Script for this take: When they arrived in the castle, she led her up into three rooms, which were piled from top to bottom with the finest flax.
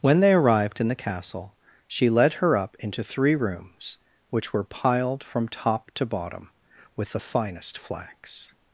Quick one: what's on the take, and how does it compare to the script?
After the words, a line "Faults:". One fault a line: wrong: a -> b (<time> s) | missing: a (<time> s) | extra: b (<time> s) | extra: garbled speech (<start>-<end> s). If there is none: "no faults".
When they arrived in the castle, she led her up into three rooms, which were piled from top to bottom with the finest flax.
Faults:
no faults